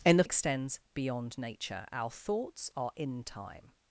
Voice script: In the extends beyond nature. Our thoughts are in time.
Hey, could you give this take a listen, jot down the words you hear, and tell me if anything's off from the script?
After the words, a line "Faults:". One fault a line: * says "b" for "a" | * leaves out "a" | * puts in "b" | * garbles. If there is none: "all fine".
In the extends beyond nature. Our thoughts are in time.
Faults:
all fine